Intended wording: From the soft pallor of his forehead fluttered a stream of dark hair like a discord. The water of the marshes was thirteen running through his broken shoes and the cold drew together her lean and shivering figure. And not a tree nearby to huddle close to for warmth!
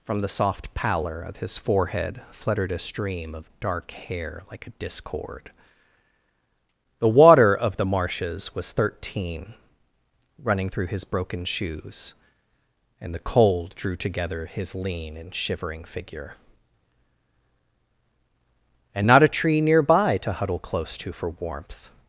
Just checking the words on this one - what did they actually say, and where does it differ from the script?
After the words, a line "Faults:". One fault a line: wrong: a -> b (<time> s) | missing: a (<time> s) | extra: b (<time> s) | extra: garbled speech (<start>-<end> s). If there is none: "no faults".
From the soft pallor of his forehead fluttered a stream of dark hair like a discord. The water of the marshes was thirteen running through his broken shoes and the cold drew together his lean and shivering figure. And not a tree nearby to huddle close to for warmth!
Faults:
wrong: her -> his (14.5 s)